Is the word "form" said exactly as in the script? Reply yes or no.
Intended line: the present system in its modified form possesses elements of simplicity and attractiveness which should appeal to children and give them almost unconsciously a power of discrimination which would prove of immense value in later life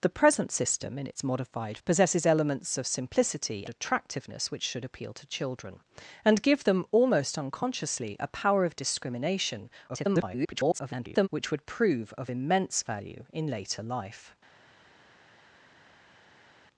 no